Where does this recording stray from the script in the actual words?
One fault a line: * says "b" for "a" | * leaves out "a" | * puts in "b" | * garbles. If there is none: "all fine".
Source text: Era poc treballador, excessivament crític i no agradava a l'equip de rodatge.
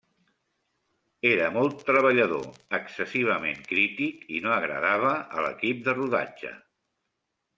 * says "molt" for "poc"